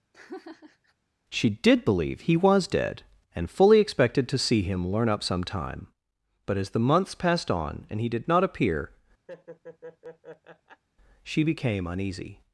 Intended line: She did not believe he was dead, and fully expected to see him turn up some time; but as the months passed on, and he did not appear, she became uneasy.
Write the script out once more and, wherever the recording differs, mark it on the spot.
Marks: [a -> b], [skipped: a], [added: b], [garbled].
She did [skipped: not] believe he was dead, and fully expected to see him [turn -> learn] up some time; but as the months passed on, and he did not appear, she became uneasy.